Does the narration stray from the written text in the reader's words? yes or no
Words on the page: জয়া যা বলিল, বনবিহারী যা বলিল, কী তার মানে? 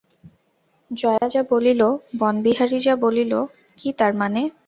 no